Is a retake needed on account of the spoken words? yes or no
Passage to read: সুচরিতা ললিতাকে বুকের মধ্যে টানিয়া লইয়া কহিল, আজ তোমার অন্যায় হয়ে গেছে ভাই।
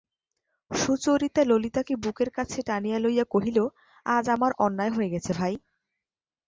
yes